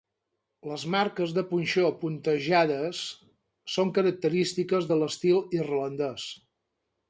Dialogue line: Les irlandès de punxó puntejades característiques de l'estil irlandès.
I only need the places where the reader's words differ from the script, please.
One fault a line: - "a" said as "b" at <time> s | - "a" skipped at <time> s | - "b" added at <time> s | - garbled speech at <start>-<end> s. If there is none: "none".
- "irlandès" said as "marques" at 0.9 s
- "són" added at 3.8 s